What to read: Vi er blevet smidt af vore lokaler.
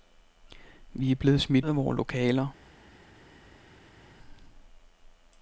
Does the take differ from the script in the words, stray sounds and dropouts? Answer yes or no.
no